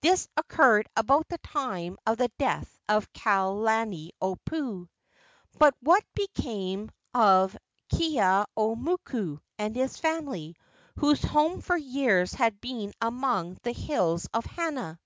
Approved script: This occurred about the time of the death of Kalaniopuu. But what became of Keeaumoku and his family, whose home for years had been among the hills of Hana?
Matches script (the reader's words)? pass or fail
pass